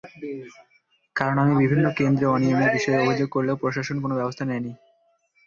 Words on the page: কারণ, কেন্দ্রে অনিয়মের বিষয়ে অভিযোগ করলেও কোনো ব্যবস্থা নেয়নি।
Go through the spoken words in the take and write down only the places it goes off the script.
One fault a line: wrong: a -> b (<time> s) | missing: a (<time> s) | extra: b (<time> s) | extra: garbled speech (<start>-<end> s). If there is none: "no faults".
extra: আমি বিভিন্ন (1.4 s)
extra: প্রশাসন (3.6 s)